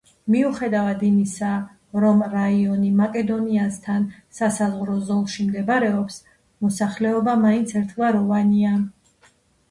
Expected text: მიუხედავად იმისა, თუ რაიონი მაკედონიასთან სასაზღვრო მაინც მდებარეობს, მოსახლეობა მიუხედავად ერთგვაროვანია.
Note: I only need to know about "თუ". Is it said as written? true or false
false